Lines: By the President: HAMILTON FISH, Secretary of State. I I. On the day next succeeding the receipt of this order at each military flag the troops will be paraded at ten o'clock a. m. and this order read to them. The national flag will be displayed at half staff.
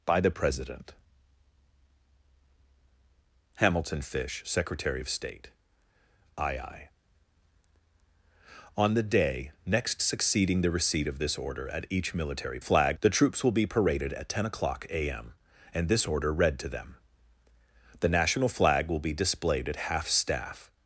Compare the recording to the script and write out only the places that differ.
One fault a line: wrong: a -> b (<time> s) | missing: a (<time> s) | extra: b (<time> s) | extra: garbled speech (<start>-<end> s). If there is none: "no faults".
no faults